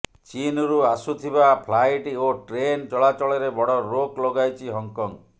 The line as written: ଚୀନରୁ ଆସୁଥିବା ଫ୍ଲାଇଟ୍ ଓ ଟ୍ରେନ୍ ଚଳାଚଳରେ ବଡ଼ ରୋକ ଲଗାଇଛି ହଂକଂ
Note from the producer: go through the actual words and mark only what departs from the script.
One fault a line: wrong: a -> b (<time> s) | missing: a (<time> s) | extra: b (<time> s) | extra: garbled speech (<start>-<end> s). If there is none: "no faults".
no faults